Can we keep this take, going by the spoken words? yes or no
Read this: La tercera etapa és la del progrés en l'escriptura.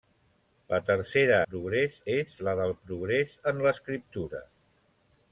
no